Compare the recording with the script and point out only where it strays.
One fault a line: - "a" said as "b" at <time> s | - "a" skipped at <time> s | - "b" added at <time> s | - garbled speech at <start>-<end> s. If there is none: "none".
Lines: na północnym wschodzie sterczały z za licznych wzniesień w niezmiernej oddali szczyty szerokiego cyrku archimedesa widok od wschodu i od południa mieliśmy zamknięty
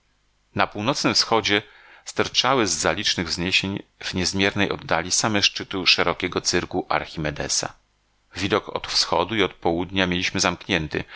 - "same" added at 5.1 s